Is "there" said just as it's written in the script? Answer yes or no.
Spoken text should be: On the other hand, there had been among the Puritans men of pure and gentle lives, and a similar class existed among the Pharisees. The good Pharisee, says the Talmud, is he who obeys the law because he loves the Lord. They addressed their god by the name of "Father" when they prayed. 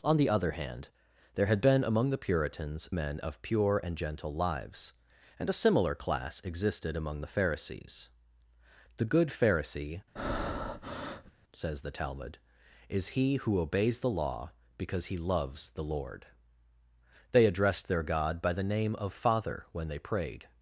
yes